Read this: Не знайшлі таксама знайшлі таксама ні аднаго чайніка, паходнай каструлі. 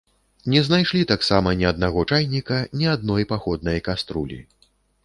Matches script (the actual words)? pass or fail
fail